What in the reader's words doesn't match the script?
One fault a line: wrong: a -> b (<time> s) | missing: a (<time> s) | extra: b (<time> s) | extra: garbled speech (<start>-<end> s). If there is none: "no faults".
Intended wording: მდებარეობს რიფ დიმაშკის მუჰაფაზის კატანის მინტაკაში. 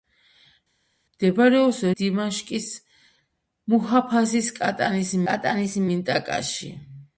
missing: რიფ (1.8 s)
extra: კატანის (5.3 s)